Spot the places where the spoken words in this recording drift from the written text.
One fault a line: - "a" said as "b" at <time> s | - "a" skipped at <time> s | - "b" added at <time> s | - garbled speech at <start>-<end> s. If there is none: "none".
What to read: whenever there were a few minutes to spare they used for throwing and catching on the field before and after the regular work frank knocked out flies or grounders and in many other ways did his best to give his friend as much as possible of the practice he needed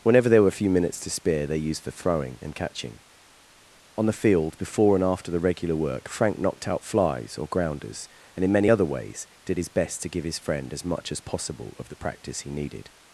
none